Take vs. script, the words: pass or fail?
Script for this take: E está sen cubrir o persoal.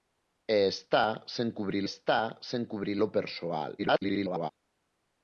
fail